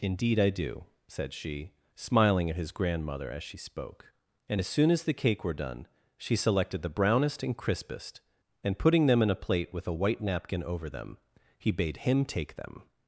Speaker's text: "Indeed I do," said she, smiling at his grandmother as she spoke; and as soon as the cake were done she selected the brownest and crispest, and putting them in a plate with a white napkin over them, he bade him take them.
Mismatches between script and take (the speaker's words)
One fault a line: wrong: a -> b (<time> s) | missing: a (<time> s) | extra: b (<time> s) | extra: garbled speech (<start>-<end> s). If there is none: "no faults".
no faults